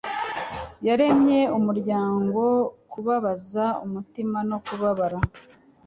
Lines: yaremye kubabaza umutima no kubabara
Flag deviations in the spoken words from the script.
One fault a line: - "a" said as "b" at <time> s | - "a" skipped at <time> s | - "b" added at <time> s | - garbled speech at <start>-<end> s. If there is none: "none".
- "umuryango" added at 1.6 s